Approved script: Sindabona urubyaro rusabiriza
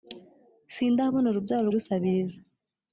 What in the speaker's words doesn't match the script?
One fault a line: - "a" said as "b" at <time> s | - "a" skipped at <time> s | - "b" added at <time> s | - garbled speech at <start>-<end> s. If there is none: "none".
none